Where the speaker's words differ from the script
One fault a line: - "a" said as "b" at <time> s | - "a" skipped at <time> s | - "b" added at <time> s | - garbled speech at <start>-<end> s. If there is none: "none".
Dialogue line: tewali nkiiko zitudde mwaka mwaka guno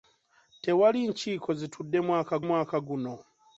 none